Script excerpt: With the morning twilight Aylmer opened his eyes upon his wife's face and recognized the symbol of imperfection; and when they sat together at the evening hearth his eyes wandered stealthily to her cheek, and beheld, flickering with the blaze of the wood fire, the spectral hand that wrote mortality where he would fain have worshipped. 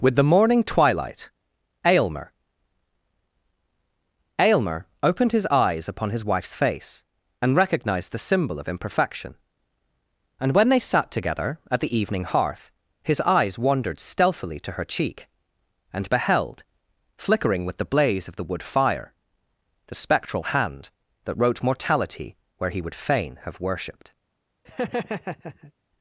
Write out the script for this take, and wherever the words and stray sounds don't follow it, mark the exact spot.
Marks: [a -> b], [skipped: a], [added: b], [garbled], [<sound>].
With the morning twilight Aylmer [added: Aylmer] opened his eyes upon his wife's face and recognized the symbol of imperfection; and when they sat together at the evening hearth his eyes wandered stealthily to her cheek, and beheld, flickering with the blaze of the wood fire, the spectral hand that wrote mortality where he would fain have worshipped. [laugh]